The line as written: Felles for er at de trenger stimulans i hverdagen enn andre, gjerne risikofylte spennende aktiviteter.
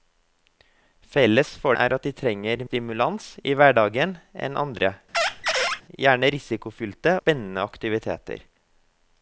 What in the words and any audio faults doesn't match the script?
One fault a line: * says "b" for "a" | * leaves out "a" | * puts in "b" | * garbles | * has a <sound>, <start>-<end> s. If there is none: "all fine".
* has a squeak, 5.1-5.8 s